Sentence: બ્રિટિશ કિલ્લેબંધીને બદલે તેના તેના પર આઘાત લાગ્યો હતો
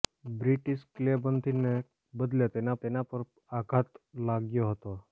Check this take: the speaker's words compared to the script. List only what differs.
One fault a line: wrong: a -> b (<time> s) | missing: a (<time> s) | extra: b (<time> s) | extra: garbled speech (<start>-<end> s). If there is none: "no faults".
no faults